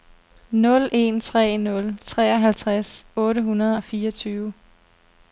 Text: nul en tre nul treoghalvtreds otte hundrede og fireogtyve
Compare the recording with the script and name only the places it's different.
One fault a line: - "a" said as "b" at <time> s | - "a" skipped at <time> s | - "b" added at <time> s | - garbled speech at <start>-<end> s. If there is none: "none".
none